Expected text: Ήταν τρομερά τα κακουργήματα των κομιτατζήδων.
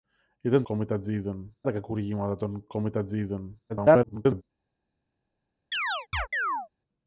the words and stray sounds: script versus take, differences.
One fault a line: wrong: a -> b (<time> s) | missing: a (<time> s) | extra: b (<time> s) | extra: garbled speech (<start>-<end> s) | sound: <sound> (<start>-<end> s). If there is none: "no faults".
wrong: τρομερά -> κομιτατζήδων (0.6 s)
extra: garbled speech (3.7-4.4 s)
sound: chirp (5.7-6.7 s)